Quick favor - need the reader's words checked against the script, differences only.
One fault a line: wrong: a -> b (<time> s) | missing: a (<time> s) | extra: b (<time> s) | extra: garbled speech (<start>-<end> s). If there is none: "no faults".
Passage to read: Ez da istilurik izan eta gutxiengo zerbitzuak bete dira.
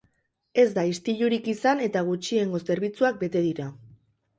no faults